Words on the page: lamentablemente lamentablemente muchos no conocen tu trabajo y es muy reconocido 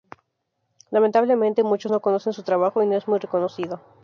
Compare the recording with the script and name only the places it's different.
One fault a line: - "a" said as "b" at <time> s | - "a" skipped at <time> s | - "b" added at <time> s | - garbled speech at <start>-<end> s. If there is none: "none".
- "lamentablemente" skipped at 1.6 s
- "tu" said as "su" at 2.3 s
- "no" added at 2.9 s